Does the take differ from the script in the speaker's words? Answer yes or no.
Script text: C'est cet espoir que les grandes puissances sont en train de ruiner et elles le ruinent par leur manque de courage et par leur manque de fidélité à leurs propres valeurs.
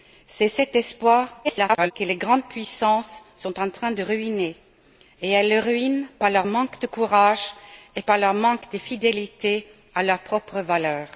yes